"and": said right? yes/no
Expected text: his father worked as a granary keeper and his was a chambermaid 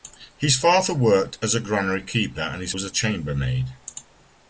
yes